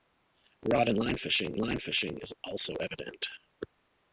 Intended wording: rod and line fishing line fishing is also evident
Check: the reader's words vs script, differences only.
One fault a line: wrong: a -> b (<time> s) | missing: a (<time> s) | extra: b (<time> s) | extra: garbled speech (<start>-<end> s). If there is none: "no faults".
no faults